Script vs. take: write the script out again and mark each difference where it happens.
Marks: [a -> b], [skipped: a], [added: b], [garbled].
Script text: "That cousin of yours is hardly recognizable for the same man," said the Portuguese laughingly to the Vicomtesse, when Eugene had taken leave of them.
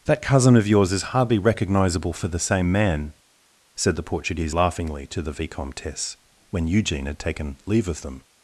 "That cousin of yours is hardly recognizable for the same man," said the Portuguese laughingly to the Vicomtesse, when Eugene had taken leave of them.